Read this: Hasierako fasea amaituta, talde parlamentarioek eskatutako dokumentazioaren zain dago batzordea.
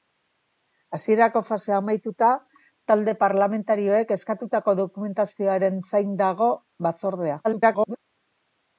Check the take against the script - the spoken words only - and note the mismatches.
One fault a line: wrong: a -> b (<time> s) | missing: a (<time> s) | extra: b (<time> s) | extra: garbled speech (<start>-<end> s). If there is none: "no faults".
extra: garbled speech (7.4-8.0 s)